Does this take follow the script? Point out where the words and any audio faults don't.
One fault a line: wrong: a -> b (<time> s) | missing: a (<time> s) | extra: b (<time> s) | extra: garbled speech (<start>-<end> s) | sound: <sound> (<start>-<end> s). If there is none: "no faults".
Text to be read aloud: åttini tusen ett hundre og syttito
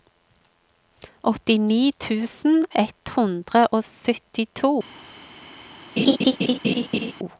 sound: laugh (6.0-7.1 s)